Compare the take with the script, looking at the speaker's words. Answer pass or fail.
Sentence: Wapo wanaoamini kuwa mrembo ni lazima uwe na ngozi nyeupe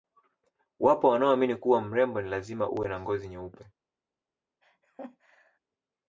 pass